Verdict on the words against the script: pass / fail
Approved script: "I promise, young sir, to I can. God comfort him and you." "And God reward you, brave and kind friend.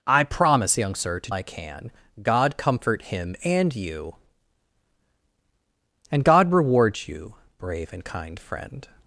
pass